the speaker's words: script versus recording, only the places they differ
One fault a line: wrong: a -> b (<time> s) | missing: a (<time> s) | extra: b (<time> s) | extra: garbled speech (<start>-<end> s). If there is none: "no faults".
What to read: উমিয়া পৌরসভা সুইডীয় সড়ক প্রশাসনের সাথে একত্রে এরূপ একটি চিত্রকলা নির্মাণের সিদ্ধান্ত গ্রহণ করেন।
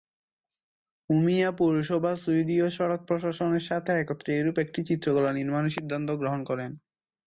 no faults